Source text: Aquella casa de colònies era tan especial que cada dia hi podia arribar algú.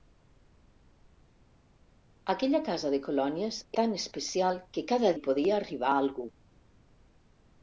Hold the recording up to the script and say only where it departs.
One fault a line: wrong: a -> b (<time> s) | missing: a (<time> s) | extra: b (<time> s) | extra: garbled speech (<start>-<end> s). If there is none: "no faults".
missing: era (3.6 s)
missing: dia (5.1 s)